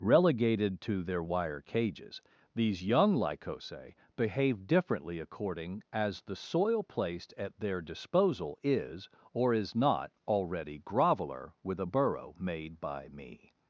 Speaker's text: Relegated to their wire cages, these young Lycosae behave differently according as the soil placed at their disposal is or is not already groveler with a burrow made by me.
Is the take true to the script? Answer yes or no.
yes